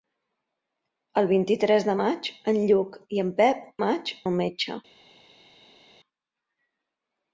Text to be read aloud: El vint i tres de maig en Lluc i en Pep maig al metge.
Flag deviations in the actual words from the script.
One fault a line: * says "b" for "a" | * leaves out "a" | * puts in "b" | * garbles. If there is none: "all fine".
all fine